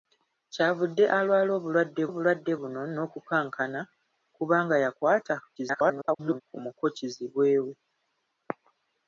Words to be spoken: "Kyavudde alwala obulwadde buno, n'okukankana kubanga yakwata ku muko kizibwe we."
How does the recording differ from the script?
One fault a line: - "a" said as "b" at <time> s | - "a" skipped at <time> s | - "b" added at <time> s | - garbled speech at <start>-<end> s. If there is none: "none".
- "obulwadde" added at 2.1 s
- garbled speech at 5.6-6.4 s